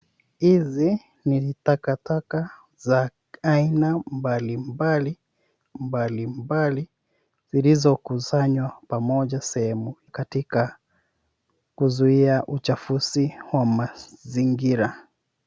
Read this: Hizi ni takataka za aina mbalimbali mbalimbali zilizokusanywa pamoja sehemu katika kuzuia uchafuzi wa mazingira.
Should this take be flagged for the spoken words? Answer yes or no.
no